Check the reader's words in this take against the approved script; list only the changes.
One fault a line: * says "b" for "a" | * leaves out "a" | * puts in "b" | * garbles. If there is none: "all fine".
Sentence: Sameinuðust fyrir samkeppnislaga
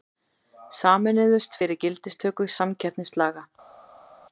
* puts in "gildistöku"